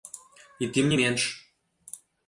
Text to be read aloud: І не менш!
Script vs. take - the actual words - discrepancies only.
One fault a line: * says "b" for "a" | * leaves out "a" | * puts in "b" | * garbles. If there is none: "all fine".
* puts in "тым"